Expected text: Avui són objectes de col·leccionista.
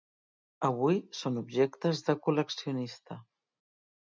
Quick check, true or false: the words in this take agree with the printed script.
true